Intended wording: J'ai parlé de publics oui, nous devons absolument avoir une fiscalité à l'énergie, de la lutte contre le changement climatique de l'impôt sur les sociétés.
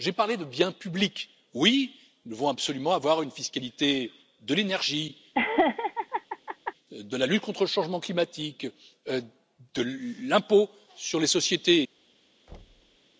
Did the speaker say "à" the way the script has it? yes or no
no